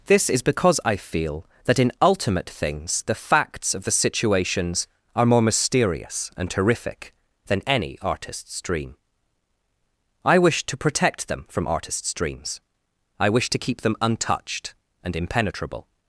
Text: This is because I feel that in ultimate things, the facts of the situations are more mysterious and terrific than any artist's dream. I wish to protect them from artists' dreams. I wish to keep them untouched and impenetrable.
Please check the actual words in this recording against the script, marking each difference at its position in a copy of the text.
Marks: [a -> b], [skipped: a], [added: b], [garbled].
This is because I feel that in ultimate things, the facts of the situations are more mysterious and terrific than any artist's dream. I wish to protect them from artists' dreams. I wish to keep them untouched and impenetrable.